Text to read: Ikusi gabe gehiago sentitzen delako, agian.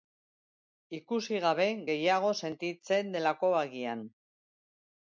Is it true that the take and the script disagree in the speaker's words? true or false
false